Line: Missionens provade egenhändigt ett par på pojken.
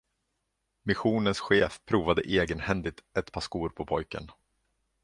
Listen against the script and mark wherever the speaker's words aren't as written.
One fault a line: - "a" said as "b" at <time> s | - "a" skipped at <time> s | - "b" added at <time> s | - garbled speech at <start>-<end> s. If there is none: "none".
- "chef" added at 1.4 s
- "skor" added at 3.4 s